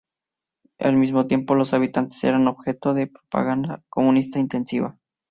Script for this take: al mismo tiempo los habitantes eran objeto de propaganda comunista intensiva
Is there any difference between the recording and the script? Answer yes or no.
no